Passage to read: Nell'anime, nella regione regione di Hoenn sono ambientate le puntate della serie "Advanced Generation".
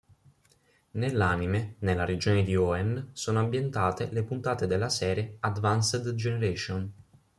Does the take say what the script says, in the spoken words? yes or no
no